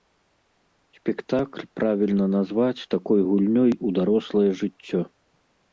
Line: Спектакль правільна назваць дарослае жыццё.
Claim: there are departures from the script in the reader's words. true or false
true